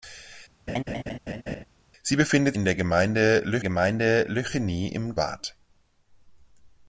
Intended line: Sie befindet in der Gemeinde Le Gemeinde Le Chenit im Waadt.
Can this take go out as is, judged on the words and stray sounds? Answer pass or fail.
fail